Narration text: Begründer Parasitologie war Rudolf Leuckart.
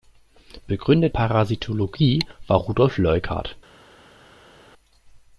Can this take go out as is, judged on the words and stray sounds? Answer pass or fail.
pass